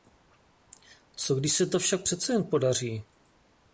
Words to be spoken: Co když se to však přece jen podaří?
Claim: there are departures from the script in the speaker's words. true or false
false